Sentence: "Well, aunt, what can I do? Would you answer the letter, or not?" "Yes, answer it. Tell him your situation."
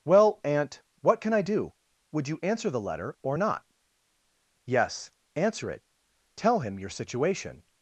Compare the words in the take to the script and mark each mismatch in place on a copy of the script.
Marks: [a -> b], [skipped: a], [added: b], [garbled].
"Well, aunt, what can I do? Would you answer the letter, or not?" "Yes, answer it. Tell him your situation."